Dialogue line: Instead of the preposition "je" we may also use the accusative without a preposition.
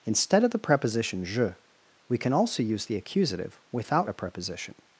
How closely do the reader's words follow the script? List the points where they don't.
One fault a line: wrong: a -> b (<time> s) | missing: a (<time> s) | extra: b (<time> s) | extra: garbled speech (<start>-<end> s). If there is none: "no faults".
wrong: may -> can (2.2 s)